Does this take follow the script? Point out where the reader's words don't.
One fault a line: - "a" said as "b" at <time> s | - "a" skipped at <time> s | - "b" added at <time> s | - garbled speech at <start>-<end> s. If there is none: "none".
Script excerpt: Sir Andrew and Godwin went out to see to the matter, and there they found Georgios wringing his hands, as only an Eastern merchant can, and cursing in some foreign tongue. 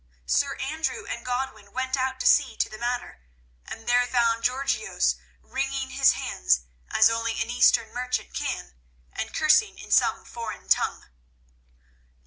- "they" skipped at 4.1 s